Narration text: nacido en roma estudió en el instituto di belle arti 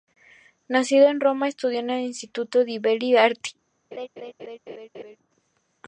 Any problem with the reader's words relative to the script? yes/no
no